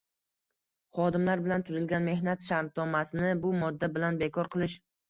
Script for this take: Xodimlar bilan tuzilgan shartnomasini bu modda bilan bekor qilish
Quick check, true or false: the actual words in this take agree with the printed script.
false